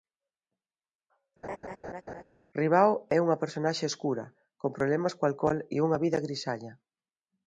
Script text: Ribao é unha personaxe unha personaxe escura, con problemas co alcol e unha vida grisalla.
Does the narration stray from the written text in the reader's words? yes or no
yes